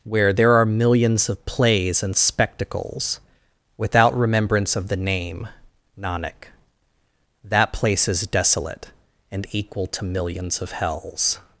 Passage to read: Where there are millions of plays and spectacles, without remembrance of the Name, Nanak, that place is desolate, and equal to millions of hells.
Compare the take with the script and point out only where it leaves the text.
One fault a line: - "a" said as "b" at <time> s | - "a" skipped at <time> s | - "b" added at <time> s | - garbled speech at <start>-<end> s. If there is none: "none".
none